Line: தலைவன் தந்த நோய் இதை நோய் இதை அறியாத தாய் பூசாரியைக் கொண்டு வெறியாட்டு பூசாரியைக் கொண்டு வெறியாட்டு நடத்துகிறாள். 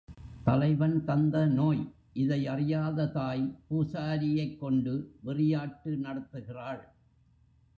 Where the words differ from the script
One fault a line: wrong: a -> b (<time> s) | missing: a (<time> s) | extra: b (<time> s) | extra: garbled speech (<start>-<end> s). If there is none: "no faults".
missing: நோய் இதை (2.5 s)
missing: பூசாரியைக் கொண்டு வெறியாட்டு (6.0 s)